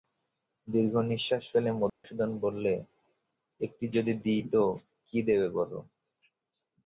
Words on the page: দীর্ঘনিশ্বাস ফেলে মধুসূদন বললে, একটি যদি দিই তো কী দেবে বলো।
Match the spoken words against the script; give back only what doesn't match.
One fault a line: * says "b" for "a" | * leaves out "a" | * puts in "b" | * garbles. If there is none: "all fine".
all fine